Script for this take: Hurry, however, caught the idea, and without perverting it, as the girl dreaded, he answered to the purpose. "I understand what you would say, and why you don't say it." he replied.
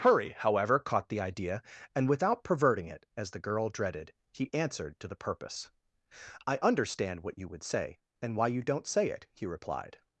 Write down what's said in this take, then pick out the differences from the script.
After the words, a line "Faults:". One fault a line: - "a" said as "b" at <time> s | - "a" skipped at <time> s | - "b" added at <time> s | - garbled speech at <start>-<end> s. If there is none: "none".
Hurry, however, caught the idea, and without perverting it, as the girl dreaded, he answered to the purpose. "I understand what you would say, and why you don't say it." he replied.
Faults:
none